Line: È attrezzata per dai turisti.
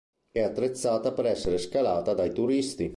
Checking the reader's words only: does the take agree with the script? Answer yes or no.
no